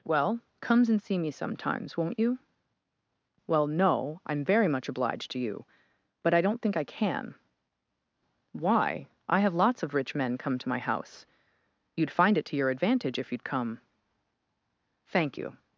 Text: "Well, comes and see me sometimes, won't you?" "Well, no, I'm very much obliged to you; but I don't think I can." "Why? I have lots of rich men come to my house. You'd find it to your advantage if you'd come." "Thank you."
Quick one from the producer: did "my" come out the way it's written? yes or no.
yes